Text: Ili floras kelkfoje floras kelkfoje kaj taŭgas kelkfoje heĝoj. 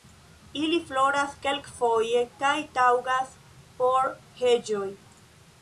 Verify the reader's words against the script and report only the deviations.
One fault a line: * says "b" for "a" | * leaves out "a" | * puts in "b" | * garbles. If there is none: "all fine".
* leaves out "floras kelkfoje"
* says "por" for "kelkfoje"